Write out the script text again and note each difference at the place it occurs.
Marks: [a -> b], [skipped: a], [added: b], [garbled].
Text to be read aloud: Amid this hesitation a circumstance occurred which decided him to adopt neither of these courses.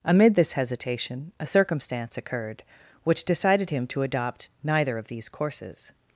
Amid this hesitation a circumstance occurred which decided him to adopt neither of these courses.